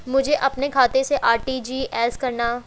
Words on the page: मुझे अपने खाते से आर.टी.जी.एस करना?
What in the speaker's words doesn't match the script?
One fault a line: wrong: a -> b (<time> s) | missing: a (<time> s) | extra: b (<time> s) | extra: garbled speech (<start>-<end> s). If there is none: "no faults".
no faults